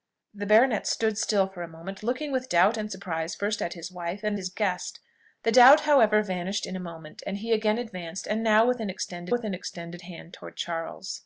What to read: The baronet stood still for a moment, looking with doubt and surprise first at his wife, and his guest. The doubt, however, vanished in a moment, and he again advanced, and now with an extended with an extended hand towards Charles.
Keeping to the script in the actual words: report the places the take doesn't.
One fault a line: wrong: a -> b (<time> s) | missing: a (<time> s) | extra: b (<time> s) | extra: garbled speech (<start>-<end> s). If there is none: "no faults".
no faults